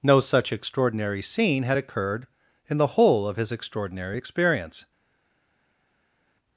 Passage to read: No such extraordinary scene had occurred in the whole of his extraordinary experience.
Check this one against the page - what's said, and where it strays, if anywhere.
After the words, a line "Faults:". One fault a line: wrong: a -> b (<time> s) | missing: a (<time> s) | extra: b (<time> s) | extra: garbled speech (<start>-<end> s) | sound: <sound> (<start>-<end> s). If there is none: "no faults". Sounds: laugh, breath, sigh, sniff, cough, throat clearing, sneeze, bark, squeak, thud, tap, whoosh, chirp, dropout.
No such extraordinary scene had occurred in the whole of his extraordinary experience.
Faults:
no faults